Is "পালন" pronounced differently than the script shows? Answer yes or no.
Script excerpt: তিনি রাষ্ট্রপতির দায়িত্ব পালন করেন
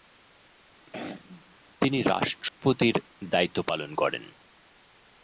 no